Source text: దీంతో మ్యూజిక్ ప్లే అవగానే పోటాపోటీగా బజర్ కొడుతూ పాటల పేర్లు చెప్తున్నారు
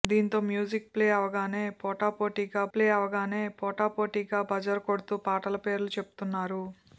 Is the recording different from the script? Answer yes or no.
yes